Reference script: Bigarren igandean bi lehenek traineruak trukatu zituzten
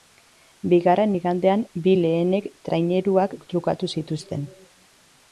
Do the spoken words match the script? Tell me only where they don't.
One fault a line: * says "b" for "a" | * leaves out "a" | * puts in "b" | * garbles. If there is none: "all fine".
all fine